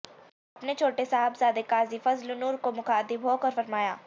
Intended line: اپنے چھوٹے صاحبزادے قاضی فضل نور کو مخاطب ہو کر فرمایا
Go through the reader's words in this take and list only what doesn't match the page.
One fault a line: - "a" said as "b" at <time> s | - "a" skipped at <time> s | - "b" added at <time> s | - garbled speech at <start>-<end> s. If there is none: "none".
none